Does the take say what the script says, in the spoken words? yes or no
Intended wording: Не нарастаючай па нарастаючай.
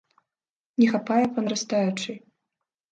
no